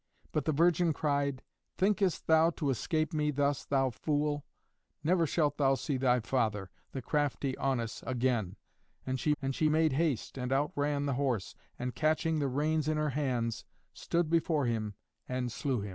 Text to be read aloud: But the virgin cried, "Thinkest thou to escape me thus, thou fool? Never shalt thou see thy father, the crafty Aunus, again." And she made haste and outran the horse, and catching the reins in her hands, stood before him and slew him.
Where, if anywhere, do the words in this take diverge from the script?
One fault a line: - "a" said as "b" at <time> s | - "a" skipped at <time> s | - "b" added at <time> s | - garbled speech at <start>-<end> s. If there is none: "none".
- "and she" added at 9.4 s